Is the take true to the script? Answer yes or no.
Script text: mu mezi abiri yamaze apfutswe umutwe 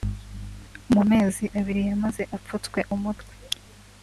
yes